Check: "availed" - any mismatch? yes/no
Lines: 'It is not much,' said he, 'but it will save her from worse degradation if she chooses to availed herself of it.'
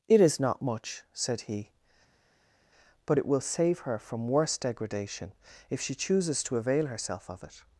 yes